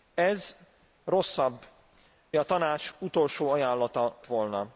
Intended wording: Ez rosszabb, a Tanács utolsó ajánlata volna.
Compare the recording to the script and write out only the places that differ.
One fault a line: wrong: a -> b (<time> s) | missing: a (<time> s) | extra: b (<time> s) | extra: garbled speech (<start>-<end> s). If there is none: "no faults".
no faults